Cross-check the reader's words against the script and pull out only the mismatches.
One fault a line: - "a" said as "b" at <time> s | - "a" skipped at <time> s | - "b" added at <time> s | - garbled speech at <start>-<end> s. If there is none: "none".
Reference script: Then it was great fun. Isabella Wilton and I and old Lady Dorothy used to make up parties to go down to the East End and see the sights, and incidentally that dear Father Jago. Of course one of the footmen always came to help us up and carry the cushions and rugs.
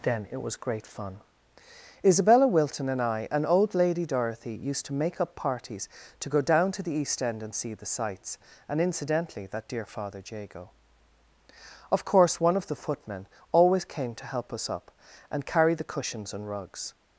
none